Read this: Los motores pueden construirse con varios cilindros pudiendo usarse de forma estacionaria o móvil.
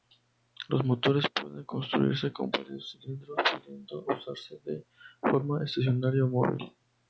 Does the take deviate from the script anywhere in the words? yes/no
no